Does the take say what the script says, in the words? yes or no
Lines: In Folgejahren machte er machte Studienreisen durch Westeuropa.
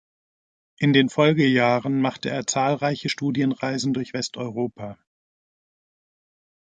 no